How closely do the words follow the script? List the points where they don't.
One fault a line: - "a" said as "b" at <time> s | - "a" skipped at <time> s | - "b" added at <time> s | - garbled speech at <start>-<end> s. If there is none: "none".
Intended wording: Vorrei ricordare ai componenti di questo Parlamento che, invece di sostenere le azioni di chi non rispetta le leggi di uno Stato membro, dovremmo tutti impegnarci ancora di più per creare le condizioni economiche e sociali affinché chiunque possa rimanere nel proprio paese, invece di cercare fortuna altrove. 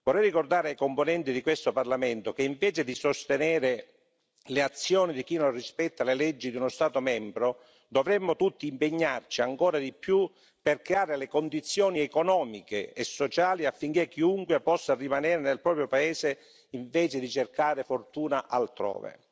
none